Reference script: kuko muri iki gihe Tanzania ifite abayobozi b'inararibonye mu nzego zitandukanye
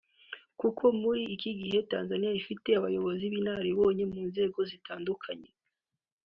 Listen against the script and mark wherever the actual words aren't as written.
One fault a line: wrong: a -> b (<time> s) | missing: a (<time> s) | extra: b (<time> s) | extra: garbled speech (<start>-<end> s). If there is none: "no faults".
no faults